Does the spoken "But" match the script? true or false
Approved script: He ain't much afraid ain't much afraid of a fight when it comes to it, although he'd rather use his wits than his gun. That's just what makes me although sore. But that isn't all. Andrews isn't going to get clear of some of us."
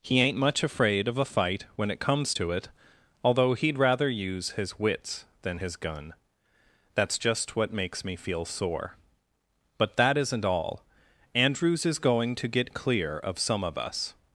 true